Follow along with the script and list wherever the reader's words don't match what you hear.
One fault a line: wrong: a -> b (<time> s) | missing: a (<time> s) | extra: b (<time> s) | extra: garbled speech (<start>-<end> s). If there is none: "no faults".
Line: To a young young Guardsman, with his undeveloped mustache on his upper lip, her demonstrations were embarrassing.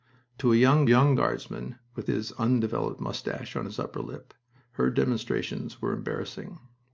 no faults